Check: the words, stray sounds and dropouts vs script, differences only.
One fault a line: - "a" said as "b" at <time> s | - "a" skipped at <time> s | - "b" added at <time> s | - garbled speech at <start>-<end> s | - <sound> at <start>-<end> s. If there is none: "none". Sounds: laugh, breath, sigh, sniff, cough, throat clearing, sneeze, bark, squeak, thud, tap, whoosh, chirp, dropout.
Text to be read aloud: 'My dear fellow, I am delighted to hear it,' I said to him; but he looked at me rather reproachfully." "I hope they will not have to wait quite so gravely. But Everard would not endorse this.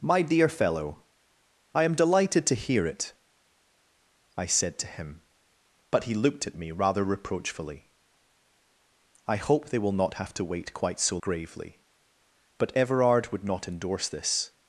none